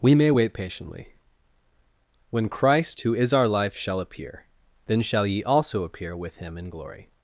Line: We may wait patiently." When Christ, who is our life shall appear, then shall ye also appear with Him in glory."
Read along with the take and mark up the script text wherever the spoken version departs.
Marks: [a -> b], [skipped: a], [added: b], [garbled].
We may wait patiently." When Christ, who is our life shall appear, then shall ye also appear with Him in glory."